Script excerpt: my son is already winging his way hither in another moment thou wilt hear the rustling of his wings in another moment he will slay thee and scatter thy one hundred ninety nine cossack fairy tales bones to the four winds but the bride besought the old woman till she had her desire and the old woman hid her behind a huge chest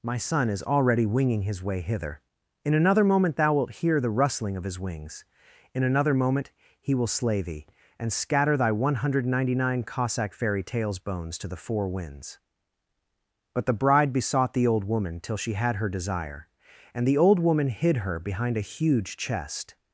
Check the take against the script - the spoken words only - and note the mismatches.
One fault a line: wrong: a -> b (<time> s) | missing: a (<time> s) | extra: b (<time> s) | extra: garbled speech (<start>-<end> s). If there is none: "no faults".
no faults